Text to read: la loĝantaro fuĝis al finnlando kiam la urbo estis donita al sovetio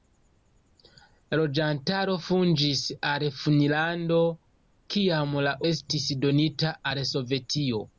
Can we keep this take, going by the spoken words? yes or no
no